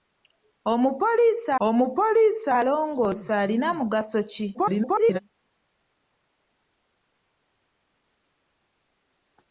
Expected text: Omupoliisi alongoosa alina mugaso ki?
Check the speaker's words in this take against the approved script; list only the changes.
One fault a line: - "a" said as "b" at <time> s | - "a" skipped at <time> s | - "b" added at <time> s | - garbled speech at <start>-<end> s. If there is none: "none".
- "omupoliisi" added at 1.7 s
- garbled speech at 4.5-5.2 s